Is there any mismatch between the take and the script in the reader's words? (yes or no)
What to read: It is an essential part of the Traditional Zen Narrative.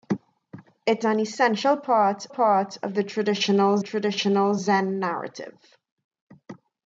yes